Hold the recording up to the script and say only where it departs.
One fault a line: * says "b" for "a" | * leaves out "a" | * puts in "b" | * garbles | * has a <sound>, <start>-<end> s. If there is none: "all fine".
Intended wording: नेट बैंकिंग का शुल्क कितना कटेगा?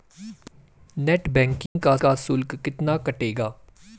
* has a dropout, 1.7-1.8 s
* puts in "का"